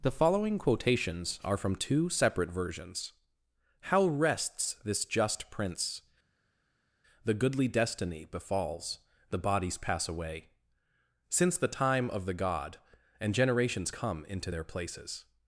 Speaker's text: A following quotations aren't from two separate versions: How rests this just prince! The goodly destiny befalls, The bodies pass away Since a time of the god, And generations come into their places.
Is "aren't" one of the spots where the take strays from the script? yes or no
yes